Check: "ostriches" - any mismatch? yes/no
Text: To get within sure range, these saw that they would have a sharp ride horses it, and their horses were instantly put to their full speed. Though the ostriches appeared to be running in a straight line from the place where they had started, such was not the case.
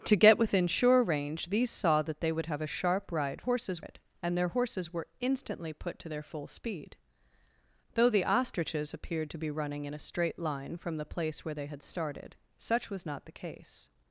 no